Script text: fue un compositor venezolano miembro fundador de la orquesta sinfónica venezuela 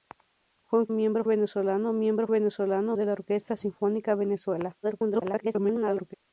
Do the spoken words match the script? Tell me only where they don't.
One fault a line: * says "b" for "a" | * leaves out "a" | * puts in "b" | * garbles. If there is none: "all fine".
* says "miembro" for "compositor"
* says "venezolano" for "fundador"
* garbles